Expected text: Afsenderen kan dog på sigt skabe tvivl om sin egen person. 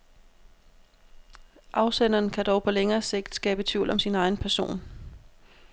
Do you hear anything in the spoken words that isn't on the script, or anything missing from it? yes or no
yes